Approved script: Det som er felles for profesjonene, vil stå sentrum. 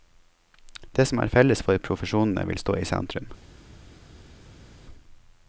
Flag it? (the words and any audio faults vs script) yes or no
yes